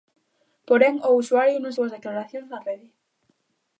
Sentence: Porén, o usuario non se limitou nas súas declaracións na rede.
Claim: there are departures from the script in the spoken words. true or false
true